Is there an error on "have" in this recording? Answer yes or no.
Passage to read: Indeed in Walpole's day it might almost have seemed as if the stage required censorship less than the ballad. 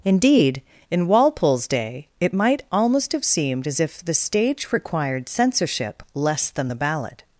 no